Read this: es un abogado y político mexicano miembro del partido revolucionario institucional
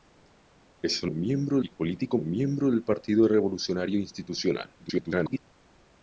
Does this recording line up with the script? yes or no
no